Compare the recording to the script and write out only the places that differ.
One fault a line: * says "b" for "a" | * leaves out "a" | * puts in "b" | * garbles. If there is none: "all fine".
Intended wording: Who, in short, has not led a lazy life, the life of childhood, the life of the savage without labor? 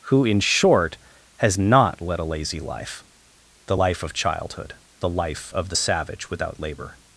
all fine